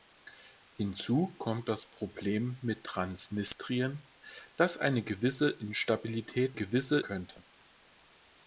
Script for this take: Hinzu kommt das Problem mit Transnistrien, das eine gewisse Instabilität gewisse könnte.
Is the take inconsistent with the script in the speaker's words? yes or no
no